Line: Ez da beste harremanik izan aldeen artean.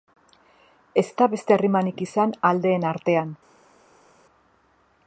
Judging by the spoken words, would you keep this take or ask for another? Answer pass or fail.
pass